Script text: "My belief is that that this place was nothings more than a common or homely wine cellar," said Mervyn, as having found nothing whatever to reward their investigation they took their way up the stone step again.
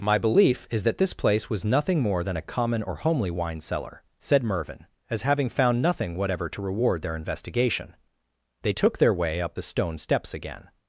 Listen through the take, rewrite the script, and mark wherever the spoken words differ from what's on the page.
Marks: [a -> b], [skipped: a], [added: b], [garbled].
"My belief is that [skipped: that] this place was [nothings -> nothing] more than a common or homely wine cellar," said Mervyn, as having found nothing whatever to reward their investigation they took their way up the stone [step -> steps] again.